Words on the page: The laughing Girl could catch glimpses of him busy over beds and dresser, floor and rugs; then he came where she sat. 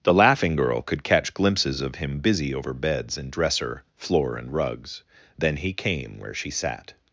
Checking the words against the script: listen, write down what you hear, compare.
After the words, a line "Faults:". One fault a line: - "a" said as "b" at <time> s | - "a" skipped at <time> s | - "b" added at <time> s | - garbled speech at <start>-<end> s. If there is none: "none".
The laughing Girl could catch glimpses of him busy over beds and dresser, floor and rugs; then he came where she sat.
Faults:
none